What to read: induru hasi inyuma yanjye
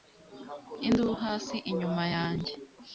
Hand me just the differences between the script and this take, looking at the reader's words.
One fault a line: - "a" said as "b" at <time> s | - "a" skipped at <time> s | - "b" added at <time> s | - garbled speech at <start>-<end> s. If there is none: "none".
none